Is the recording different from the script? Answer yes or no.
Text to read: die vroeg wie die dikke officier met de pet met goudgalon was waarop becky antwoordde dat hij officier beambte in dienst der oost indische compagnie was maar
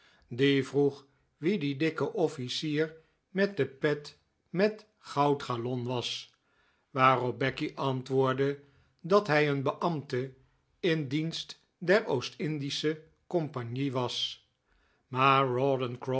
yes